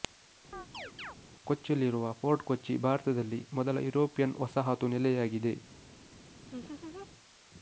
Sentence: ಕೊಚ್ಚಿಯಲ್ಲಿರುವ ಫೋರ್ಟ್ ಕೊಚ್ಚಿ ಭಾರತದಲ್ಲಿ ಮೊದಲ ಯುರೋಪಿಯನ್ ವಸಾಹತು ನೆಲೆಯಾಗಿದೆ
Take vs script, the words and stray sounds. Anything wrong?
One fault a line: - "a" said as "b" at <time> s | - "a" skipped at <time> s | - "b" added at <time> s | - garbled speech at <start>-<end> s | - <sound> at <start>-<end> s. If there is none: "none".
- chirp at 0.5-1.2 s
- laugh at 6.4-7.1 s